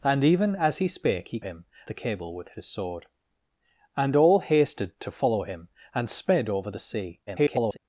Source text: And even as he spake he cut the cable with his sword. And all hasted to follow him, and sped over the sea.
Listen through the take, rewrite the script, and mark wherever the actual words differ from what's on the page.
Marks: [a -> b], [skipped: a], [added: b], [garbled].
And even as he spake he [cut -> him] the cable with his sword. And all hasted to follow him, and sped over the sea. [garbled]